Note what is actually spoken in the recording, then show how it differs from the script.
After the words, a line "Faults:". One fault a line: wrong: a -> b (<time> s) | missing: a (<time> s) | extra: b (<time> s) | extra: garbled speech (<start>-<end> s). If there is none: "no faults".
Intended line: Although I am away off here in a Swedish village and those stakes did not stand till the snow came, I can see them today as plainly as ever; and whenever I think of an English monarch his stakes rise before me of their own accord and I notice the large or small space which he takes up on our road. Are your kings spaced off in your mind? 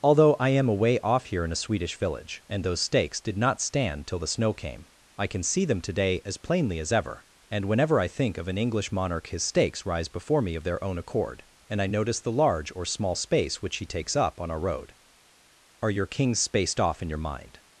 Although I am away off here in a Swedish village and those stakes did not stand till the snow came, I can see them today as plainly as ever; and whenever I think of an English monarch his stakes rise before me of their own accord and I notice the large or small space which he takes up on our road. Are your kings spaced off in your mind?
Faults:
no faults